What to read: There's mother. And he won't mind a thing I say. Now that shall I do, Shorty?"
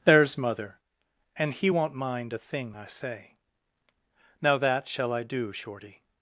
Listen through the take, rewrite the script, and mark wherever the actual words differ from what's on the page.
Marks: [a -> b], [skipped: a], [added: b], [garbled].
There's mother. And he won't mind a thing I say. Now that shall I do, Shorty?"